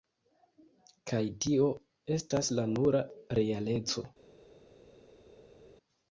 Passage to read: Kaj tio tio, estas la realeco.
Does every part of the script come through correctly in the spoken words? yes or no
no